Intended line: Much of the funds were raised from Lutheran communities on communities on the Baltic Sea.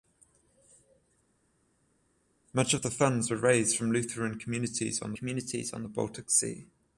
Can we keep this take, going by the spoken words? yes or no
yes